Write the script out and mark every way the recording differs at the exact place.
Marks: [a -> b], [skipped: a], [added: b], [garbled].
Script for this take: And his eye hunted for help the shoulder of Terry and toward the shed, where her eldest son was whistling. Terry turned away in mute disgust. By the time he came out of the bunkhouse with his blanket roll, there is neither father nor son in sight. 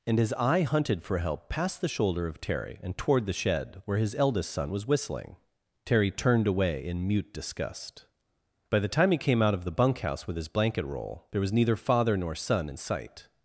And his eye hunted for help [added: past] the shoulder of Terry and toward the shed, where [her -> his] eldest son was whistling. Terry turned away in mute disgust. By the time he came out of the bunkhouse with his blanket roll, there [is -> was] neither father nor son in sight.